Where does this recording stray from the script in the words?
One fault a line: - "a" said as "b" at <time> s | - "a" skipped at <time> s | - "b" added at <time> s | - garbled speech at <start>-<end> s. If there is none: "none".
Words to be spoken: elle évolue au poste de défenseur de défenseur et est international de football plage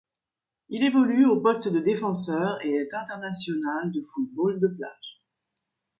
- "elle" said as "il" at 0.7 s
- "de défenseur" skipped at 2.6 s
- "de" added at 4.6 s